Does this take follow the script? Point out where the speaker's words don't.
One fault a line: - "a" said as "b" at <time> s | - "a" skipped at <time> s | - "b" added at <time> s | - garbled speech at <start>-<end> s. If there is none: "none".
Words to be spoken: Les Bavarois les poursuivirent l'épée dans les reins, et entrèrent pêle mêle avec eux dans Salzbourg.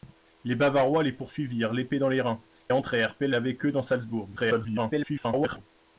- "et" skipped at 2.4 s
- "mêle" skipped at 3.3 s
- garbled speech at 4.4-5.6 s